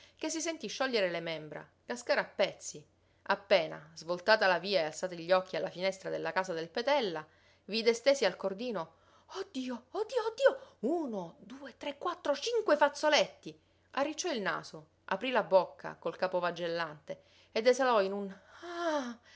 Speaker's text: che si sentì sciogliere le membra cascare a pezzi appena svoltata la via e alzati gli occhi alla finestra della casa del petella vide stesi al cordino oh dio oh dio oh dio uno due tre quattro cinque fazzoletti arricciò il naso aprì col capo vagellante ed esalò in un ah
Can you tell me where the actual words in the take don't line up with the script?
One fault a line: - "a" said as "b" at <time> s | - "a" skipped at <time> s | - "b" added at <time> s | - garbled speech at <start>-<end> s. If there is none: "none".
- "la bocca" added at 15.3 s